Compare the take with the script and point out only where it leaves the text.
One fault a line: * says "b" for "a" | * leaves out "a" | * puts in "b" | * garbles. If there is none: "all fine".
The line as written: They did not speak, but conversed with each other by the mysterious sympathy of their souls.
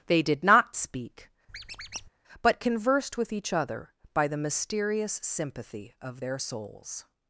all fine